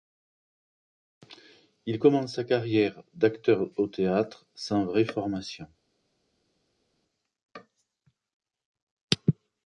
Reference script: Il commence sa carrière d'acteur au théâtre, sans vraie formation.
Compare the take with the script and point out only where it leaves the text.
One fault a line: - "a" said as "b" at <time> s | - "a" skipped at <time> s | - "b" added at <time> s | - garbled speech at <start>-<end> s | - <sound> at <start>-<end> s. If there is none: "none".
none